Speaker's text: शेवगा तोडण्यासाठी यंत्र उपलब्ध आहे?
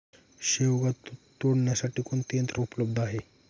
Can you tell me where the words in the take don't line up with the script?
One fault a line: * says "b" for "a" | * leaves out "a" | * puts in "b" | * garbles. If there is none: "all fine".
* puts in "कोणते"